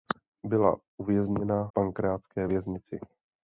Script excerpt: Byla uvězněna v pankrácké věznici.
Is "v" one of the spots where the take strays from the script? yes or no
yes